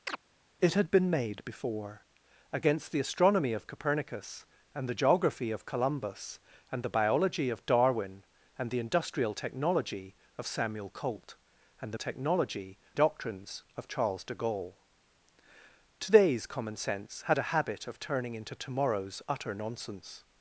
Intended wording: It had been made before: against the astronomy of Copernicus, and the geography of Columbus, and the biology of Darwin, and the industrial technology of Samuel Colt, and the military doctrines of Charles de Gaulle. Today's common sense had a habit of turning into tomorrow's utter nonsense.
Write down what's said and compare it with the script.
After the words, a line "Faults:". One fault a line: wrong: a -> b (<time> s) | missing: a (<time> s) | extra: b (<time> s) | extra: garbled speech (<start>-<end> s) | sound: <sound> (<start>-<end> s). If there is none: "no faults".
It had been made before: against the astronomy of Copernicus, and the geography of Columbus, and the biology of Darwin, and the industrial technology of Samuel Colt, and the technology doctrines of Charles de Gaulle. Today's common sense had a habit of turning into tomorrow's utter nonsense.
Faults:
sound: chirp (0.1-0.2 s)
wrong: military -> technology (11.9 s)